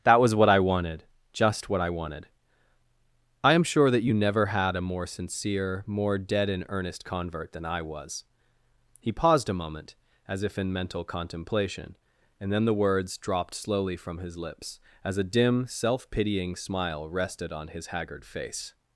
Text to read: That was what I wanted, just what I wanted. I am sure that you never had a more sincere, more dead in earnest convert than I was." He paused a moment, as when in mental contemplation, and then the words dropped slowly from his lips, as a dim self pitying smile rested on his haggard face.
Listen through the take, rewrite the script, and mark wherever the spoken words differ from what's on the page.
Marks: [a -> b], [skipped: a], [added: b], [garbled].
That was what I wanted, just what I wanted. I am sure that you never had a more sincere, more dead in earnest convert than I was." He paused a moment, as [when -> if] in mental contemplation, and then the words dropped slowly from his lips, as a dim self pitying smile rested on his haggard face.